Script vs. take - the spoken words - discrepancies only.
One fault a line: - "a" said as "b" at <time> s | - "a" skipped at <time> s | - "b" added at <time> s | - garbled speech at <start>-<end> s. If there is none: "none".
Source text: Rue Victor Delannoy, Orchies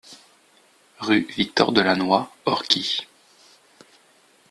none